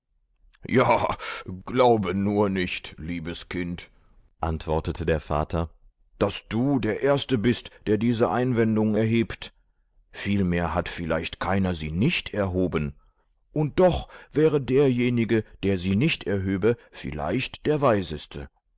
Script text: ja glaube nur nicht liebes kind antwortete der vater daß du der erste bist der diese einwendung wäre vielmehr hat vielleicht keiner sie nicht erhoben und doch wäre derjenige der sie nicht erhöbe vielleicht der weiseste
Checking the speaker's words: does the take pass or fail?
fail